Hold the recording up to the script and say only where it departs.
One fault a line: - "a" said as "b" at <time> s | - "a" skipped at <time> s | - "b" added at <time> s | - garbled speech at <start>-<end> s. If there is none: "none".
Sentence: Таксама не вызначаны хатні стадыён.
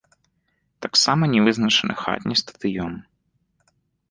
none